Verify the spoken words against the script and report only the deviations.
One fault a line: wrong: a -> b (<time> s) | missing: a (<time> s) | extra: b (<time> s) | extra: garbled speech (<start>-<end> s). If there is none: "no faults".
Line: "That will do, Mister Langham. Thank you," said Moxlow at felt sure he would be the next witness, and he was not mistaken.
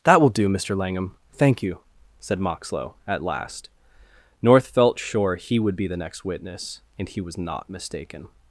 extra: last North (3.2 s)